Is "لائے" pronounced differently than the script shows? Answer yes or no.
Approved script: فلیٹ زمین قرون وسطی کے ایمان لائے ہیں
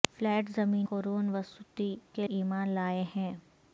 no